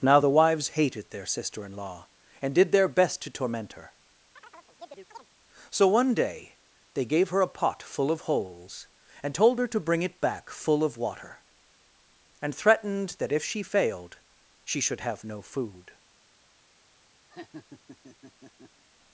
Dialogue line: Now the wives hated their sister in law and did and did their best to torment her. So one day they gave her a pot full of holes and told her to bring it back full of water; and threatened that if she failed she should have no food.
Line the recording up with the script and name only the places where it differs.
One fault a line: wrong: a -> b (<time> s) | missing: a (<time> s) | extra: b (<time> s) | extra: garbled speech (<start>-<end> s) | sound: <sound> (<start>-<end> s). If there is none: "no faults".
missing: and did (2.7 s)
sound: chirp (4.4-5.3 s)
sound: laugh (17.3-18.8 s)